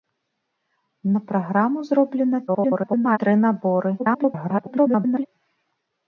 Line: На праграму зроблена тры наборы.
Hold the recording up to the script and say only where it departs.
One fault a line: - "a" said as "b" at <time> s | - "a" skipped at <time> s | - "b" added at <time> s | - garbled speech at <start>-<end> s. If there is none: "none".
- garbled speech at 2.5-3.2 s
- garbled speech at 4.0-5.3 s